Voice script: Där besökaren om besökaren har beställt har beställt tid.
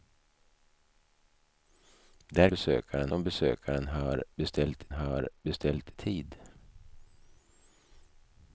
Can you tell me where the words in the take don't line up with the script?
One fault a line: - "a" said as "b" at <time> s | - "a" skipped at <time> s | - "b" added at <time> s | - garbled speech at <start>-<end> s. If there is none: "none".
none